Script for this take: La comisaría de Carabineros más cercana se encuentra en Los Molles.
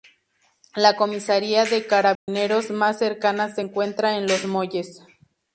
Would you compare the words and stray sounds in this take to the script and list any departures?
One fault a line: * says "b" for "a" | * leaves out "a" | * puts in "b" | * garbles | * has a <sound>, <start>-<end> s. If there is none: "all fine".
* has a dropout, 2.1-2.3 s